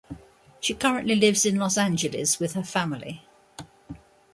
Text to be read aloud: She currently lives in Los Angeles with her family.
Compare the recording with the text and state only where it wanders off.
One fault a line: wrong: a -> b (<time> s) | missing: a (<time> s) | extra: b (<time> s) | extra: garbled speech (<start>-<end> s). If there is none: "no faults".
no faults